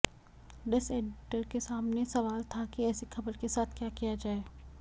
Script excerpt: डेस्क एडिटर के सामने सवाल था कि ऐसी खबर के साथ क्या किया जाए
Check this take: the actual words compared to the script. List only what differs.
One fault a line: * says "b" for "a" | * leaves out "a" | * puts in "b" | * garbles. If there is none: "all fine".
all fine